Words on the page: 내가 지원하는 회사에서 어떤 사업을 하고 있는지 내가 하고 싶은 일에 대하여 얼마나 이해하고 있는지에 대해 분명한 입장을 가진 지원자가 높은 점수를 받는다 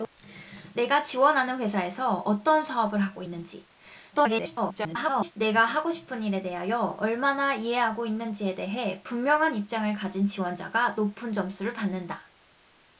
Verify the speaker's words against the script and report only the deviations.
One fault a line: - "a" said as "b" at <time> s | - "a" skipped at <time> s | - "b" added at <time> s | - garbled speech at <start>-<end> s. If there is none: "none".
- garbled speech at 4.1-5.3 s